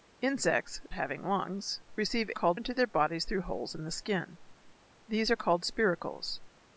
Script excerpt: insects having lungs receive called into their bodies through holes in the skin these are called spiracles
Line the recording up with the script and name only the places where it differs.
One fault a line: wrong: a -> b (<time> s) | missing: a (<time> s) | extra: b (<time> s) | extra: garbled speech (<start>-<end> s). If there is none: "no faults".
no faults